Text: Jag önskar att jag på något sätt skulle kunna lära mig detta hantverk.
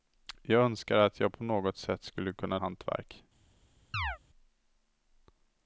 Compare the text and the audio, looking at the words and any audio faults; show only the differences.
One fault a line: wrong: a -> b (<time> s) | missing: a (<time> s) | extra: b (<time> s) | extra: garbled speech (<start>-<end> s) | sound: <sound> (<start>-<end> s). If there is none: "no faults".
missing: lära mig detta (2.6 s)
sound: chirp (3.9-4.2 s)